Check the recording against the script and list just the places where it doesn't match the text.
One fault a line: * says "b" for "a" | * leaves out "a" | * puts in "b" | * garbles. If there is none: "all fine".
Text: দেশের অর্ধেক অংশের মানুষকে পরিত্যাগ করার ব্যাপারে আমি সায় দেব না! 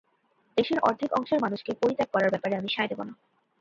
all fine